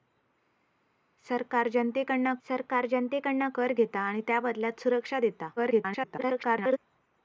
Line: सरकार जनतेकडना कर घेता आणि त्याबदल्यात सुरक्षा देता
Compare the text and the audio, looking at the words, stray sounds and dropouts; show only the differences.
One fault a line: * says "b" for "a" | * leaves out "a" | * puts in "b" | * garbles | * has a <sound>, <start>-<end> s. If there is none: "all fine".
* puts in "सरकार जनतेकडना"
* garbles